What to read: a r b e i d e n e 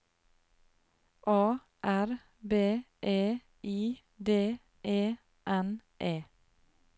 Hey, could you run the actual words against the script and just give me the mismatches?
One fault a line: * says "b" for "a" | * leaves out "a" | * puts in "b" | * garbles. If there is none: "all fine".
all fine